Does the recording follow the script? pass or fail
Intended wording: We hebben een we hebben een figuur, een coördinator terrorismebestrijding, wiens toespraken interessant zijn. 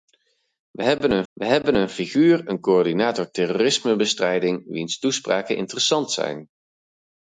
pass